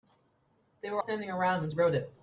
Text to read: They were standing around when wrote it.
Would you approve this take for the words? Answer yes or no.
yes